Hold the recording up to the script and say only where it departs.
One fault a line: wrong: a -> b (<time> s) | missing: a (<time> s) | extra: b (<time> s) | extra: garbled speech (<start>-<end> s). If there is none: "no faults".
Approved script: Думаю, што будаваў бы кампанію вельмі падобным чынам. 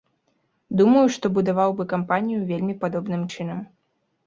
no faults